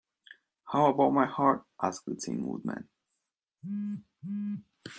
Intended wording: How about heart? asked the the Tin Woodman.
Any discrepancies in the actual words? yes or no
yes